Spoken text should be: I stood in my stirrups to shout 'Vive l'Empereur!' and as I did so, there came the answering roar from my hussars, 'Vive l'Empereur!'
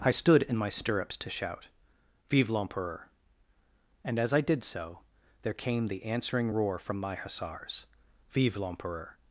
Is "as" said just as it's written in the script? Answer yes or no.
yes